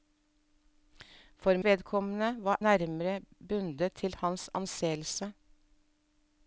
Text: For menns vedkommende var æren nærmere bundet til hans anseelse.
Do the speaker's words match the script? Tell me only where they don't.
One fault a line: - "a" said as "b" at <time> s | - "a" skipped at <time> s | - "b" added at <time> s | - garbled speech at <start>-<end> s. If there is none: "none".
- "menns" skipped at 1.6 s
- "æren" skipped at 2.6 s